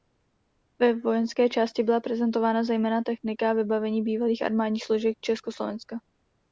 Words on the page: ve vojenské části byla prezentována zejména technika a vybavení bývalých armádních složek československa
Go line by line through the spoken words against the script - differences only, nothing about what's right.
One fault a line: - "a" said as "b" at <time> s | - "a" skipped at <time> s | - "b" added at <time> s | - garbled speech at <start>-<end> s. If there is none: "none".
none